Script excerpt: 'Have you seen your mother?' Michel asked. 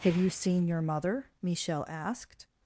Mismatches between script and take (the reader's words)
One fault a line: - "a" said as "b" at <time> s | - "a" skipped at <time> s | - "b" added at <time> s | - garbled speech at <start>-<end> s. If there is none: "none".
none